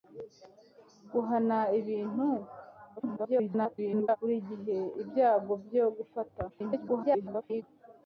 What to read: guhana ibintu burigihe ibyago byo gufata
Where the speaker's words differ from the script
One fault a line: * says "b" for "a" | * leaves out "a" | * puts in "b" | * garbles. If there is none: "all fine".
* garbles
* garbles